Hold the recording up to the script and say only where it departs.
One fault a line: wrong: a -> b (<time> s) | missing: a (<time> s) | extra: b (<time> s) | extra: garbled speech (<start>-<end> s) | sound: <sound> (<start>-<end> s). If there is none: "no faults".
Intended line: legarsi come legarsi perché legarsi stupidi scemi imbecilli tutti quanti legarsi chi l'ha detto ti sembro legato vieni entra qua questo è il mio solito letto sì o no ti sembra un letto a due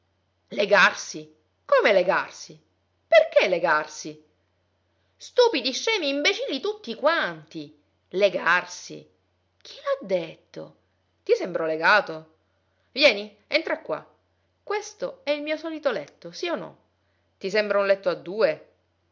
no faults